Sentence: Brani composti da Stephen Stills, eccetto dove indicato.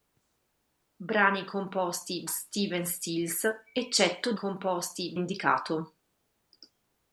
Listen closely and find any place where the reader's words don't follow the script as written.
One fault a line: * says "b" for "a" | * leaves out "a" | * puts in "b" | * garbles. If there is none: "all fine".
* leaves out "da"
* says "composti" for "dove"